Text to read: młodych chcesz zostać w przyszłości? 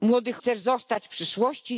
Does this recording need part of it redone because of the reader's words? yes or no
no